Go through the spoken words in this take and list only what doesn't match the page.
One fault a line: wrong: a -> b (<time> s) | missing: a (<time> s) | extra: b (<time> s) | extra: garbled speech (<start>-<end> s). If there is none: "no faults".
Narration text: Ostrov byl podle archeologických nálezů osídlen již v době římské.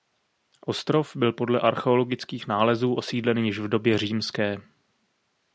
no faults